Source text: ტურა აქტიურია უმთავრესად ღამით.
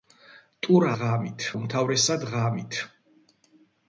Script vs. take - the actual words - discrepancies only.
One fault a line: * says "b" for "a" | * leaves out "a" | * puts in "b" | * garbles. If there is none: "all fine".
* says "ღამით" for "აქტიურია"